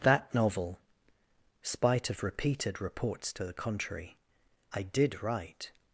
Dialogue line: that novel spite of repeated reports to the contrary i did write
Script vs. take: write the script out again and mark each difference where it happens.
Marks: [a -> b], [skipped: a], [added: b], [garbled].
that novel spite of repeated reports to the contrary i did write